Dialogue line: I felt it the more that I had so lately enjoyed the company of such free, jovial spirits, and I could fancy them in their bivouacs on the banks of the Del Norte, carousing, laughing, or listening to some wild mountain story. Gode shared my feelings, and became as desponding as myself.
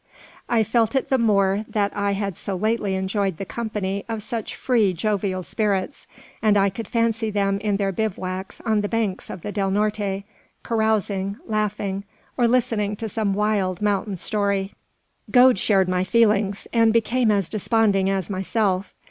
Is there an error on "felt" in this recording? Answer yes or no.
no